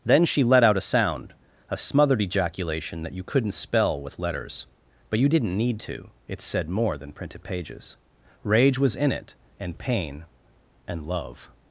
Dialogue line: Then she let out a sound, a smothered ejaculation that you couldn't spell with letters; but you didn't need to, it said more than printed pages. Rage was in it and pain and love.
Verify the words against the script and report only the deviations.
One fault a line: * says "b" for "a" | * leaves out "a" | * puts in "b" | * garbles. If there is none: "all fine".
all fine